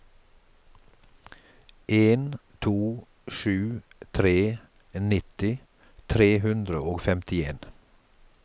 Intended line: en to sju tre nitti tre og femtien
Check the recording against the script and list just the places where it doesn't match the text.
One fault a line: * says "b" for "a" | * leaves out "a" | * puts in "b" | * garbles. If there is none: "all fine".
* puts in "hundre"